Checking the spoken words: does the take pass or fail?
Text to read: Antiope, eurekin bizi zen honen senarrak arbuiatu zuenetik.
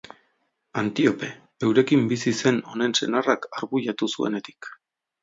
pass